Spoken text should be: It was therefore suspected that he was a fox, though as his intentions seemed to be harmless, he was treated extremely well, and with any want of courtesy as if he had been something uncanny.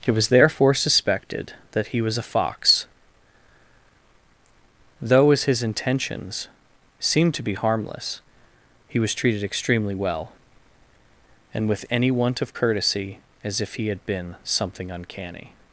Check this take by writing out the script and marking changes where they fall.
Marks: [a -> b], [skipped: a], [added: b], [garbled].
It was therefore suspected that he was a fox, though as his intentions seemed to be harmless, he was treated extremely well, and with any want of courtesy as if he had been something uncanny.